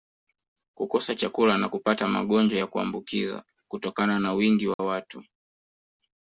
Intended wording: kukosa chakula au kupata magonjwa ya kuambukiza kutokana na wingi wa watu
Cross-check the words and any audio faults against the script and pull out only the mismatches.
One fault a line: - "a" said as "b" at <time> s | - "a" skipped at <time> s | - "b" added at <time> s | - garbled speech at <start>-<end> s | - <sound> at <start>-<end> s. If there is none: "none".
- "au" said as "na" at 1.6 s
- dropout at 4.7-4.8 s